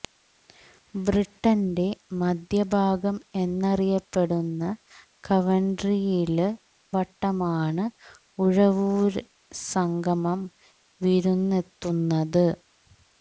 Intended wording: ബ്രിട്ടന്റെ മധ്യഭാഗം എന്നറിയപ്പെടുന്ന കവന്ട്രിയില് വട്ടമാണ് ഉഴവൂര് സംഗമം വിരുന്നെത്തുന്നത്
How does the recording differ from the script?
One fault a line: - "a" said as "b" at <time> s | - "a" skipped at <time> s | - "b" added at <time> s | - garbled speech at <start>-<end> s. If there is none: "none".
none